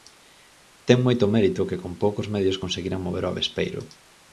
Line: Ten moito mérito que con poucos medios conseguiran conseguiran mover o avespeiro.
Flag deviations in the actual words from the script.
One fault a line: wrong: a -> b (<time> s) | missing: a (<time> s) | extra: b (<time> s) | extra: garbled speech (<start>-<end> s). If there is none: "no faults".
missing: conseguiran (3.0 s)